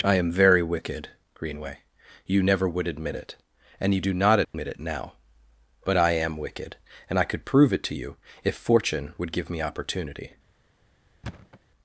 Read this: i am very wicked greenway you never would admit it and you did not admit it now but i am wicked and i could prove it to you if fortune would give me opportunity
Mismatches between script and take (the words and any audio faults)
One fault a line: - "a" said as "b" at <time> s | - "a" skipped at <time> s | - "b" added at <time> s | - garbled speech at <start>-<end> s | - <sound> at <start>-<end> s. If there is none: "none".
- "did" said as "do" at 4.0 s
- dropout at 4.4-4.5 s
- thud at 11.2-11.6 s